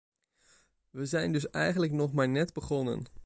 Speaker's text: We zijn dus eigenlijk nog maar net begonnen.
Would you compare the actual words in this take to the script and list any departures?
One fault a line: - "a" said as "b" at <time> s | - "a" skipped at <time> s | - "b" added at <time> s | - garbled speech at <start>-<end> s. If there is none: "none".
none